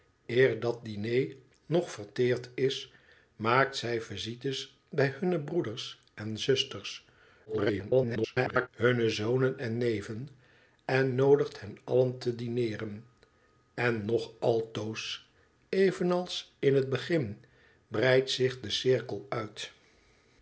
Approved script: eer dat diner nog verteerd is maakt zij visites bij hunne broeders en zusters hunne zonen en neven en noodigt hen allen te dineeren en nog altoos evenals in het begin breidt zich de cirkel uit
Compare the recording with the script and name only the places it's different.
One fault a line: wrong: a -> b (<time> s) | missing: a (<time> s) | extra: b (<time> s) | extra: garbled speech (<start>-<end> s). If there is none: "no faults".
extra: garbled speech (7.5-8.7 s)